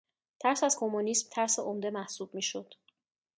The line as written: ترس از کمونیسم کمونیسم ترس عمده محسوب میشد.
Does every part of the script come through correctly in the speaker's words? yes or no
no